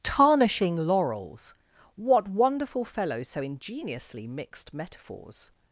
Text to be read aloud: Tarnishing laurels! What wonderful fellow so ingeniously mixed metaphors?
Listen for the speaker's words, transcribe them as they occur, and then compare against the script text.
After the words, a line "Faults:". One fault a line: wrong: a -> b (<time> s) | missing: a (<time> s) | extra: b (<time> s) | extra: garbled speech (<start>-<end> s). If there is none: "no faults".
Tarnishing laurels! What wonderful fellow so ingeniously mixed metaphors?
Faults:
no faults